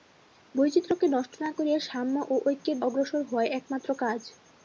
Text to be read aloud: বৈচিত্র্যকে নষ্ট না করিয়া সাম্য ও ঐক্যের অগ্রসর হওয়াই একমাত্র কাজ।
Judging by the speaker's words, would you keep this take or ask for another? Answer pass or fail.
pass